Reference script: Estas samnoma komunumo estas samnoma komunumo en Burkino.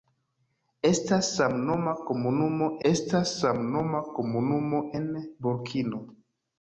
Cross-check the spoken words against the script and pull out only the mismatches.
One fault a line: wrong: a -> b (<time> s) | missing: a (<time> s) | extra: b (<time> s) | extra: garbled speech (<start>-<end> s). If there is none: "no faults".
no faults